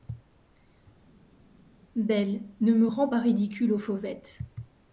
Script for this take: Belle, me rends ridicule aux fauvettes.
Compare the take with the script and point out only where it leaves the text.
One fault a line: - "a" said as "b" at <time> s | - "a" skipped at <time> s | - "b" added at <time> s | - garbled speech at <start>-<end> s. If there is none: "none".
- "ne" added at 2.6 s
- "pas" added at 3.1 s